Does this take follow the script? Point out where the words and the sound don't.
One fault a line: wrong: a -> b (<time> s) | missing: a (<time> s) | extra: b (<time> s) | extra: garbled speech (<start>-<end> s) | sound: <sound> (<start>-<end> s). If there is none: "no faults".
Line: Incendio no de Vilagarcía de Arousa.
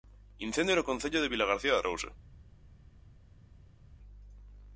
extra: concello (0.8 s)